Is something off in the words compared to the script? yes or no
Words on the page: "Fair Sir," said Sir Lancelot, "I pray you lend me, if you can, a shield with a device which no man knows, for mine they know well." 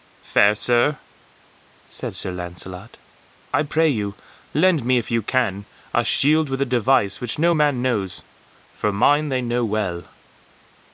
no